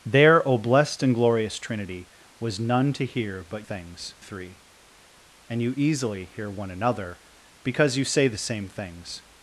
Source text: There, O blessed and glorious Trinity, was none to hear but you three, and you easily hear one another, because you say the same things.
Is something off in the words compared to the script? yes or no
yes